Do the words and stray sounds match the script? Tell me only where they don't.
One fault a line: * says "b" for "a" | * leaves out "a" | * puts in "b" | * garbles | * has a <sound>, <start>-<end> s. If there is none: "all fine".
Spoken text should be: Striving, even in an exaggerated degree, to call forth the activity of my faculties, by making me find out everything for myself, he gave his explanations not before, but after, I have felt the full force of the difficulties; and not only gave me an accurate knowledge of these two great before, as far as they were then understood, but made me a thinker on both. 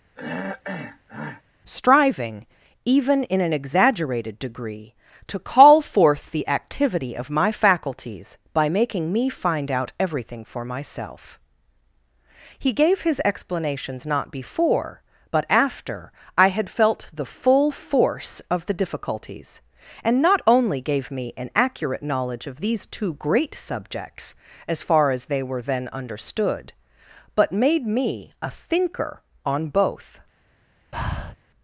* has a throat clearing, 0.2-1.4 s
* says "had" for "have"
* says "subjects" for "before"
* has a breath, 30.9-31.4 s